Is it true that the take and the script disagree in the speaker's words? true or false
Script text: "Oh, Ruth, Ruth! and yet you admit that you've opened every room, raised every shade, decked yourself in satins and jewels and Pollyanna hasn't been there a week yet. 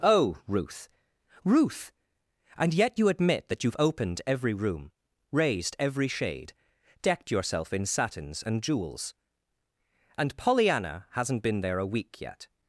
false